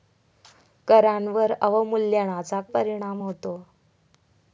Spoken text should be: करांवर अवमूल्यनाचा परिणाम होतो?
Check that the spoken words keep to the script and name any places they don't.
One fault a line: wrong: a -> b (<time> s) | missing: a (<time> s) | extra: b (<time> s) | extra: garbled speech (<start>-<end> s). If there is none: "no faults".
no faults